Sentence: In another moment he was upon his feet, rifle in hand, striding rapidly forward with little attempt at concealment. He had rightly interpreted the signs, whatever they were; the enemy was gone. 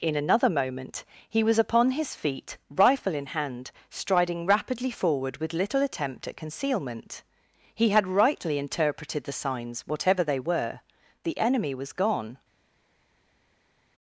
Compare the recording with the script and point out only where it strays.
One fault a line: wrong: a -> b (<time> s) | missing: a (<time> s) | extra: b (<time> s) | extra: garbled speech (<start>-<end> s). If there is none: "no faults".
no faults